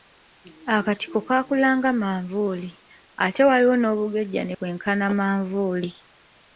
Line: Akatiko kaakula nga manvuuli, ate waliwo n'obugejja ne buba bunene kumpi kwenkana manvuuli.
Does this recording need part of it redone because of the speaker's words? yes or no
yes